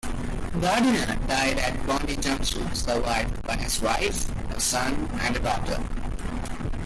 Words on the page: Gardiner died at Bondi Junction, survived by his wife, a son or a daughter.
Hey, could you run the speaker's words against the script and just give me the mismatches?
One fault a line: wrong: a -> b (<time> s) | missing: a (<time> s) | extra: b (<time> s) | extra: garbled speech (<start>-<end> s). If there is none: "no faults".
wrong: or -> and (5.2 s)